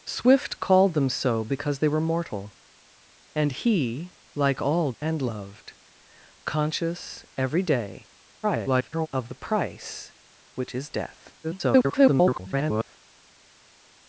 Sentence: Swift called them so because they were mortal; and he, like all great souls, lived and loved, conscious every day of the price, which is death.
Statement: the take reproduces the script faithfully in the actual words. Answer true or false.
false